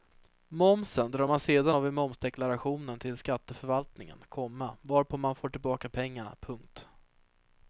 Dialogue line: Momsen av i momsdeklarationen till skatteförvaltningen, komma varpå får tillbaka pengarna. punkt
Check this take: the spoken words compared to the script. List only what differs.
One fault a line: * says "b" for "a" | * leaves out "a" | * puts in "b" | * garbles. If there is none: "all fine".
* puts in "drar man sedan"
* puts in "man"